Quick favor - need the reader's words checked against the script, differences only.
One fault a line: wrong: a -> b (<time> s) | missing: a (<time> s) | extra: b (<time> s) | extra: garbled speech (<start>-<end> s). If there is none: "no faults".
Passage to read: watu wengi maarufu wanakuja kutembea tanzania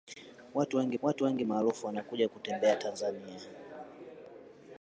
extra: watu wengi (1.0 s)